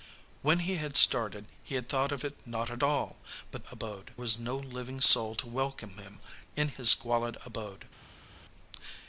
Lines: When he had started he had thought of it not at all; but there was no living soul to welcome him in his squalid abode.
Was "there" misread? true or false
true